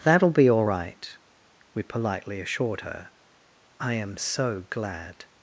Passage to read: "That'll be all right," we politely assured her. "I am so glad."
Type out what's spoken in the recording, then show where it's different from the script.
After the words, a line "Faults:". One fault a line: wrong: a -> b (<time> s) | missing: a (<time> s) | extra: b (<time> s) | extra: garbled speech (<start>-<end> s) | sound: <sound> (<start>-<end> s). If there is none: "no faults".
"That'll be all right," we politely assured her. "I am so glad."
Faults:
no faults